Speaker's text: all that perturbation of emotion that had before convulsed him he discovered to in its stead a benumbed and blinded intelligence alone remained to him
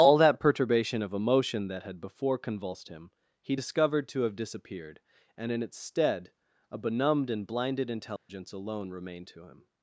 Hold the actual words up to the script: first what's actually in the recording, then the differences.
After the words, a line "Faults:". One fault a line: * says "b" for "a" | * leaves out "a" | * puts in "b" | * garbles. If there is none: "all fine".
all that perturbation of emotion that had before convulsed him he discovered to have disappeared and in its stead a benumbed and blinded intelligence alone remained to him
Faults:
* puts in "have disappeared and"